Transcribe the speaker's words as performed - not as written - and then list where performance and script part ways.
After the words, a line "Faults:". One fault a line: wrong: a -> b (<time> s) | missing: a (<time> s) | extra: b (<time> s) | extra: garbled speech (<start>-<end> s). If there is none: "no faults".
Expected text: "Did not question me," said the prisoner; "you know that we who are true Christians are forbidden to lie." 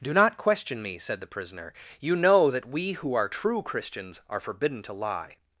"Do not question me," said the prisoner; "you know that we who are true Christians are forbidden to lie."
Faults:
wrong: Did -> Do (0.0 s)